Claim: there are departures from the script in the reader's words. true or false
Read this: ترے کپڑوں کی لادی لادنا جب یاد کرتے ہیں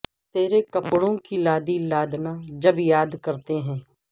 false